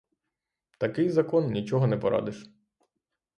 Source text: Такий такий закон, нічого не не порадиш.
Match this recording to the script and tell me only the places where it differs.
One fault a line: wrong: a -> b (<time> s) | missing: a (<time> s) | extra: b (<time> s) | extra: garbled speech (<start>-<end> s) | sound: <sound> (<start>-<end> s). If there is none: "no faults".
missing: такий (1.1 s)
missing: не (2.0 s)